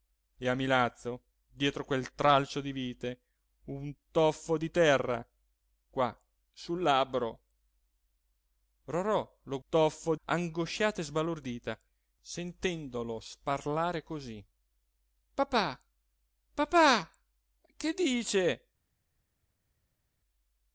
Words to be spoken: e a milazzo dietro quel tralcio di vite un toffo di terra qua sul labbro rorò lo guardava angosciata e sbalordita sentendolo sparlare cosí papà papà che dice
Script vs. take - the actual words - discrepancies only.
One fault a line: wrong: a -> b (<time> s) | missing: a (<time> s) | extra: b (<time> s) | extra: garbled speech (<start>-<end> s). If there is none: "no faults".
wrong: guardava -> toffo (9.7 s)